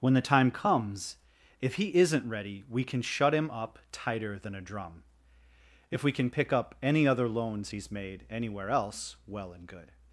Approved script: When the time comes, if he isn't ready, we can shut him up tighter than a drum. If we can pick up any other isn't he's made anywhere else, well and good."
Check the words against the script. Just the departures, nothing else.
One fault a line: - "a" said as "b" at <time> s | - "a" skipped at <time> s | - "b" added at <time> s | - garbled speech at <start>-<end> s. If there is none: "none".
- "isn't" said as "loans" at 7.3 s